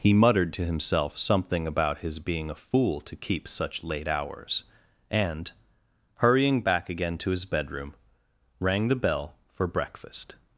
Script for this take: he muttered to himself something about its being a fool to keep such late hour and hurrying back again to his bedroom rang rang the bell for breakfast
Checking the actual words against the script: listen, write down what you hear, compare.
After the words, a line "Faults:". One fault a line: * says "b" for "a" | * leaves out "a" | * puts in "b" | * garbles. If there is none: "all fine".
he muttered to himself something about his being a fool to keep such late hours and hurrying back again to his bedroom rang the bell for breakfast
Faults:
* says "his" for "its"
* says "hours" for "hour"
* leaves out "rang"